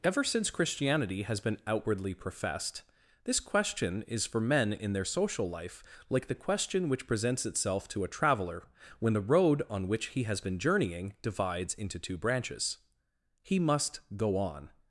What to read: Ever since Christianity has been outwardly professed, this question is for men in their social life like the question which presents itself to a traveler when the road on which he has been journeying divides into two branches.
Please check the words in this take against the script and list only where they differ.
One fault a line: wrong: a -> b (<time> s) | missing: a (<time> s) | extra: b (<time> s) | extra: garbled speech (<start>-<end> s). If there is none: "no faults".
extra: He must go on (13.4 s)